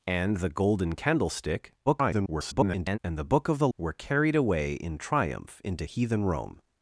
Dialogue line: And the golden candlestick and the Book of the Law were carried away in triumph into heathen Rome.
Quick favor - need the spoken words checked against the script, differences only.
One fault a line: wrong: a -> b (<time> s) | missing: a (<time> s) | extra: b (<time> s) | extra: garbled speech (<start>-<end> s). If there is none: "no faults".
extra: garbled speech (1.9-3.0 s)
missing: Law (3.7 s)